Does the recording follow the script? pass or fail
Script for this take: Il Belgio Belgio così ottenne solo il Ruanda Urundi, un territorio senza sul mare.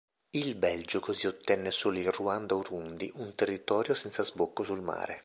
fail